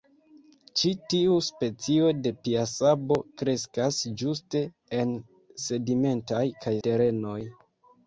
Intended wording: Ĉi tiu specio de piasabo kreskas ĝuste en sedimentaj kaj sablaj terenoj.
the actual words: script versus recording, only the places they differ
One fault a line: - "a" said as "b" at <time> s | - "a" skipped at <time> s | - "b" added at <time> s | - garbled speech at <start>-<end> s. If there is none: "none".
- "sablaj" skipped at 6.8 s